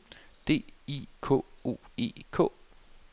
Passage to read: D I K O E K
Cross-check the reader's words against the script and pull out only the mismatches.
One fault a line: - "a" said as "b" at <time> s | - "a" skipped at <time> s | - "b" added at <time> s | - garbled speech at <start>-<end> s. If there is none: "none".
none